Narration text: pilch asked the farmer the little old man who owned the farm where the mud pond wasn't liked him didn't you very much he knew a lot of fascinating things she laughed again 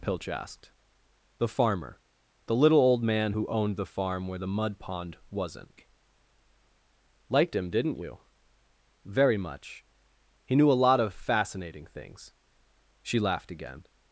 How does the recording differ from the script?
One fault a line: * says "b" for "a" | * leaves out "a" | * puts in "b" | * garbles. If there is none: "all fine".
all fine